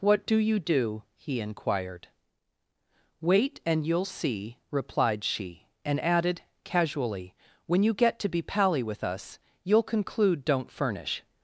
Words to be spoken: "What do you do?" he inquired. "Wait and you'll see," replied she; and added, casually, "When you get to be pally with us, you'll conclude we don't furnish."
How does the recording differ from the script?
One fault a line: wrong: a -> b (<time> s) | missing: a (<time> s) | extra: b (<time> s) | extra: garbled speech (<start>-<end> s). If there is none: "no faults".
missing: we (10.5 s)